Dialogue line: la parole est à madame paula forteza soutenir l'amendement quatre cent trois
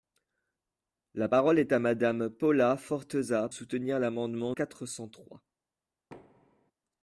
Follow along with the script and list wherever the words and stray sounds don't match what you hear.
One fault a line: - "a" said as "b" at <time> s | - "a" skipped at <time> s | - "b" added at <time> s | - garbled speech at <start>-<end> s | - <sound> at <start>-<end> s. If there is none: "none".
- thud at 6.1-6.7 s